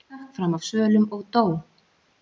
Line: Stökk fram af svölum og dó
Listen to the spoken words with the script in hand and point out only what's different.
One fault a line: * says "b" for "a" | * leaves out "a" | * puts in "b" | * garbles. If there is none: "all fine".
all fine